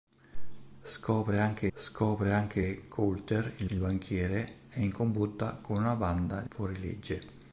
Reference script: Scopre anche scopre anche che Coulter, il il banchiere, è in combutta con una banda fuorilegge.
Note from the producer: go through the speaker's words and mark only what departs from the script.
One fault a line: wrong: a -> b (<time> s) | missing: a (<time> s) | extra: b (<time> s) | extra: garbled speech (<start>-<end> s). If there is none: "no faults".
no faults